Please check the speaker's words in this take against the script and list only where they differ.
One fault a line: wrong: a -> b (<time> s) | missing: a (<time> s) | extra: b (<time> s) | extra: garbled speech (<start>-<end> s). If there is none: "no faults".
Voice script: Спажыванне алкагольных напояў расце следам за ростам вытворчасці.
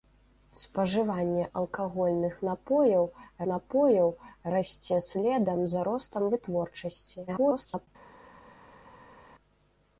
extra: напояў (3.5 s)
extra: garbled speech (7.3-7.9 s)